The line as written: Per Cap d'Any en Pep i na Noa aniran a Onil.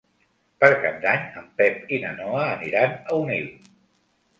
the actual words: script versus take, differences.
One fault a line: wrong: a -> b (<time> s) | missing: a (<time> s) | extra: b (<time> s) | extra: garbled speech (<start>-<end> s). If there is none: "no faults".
no faults